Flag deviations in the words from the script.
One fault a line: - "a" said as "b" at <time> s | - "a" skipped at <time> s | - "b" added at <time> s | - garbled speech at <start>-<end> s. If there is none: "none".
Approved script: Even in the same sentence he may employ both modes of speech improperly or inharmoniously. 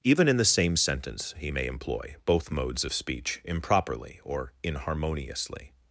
none